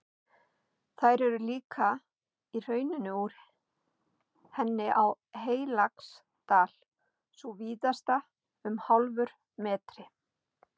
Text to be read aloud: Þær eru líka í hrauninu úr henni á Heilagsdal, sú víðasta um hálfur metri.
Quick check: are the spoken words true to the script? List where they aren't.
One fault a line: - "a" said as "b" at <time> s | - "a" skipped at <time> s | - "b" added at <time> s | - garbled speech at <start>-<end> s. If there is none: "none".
none